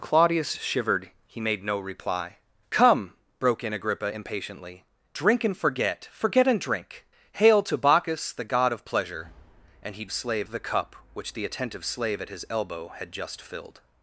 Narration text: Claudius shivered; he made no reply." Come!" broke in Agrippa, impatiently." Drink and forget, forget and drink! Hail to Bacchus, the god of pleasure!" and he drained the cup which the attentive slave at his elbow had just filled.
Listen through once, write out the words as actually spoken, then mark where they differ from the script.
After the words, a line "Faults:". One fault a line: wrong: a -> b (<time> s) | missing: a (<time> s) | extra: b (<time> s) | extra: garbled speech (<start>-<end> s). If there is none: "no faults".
Claudius shivered; he made no reply." Come!" broke in Agrippa, impatiently." Drink and forget, forget and drink! Hail to Bacchus, the god of pleasure!" and he slave the cup which the attentive slave at his elbow had just filled.
Faults:
wrong: drained -> slave (10.1 s)